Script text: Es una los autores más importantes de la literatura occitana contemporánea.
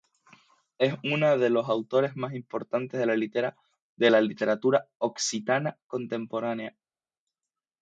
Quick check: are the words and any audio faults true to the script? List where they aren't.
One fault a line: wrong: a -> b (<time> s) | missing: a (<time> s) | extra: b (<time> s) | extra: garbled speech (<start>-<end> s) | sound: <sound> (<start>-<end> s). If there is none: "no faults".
extra: de (1.4 s)